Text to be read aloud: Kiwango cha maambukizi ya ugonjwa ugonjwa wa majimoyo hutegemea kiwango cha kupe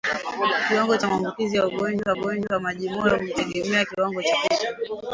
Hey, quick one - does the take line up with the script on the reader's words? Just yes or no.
yes